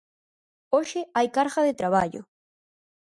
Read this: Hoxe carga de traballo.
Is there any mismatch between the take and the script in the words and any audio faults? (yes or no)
yes